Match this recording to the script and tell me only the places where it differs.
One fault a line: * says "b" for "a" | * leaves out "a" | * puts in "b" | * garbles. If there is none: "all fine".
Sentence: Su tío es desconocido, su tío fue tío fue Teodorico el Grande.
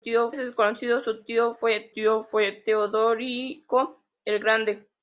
all fine